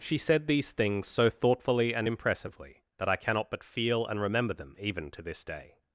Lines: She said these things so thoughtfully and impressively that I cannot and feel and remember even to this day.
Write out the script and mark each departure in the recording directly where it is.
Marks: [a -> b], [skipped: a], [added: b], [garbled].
She said these things so thoughtfully and impressively that I cannot [and -> but] feel and remember [added: them] even to this day.